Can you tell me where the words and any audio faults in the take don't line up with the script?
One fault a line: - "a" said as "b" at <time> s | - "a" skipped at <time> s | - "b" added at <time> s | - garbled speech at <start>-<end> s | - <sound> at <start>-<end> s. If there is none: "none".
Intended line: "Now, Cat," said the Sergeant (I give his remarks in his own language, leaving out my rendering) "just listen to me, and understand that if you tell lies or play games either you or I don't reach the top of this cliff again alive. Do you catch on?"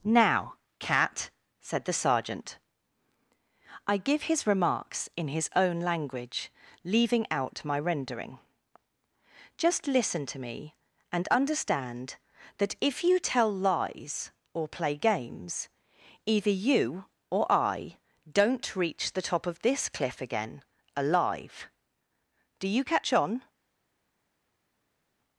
none